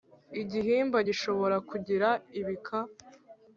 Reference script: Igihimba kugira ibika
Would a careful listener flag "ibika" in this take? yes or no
no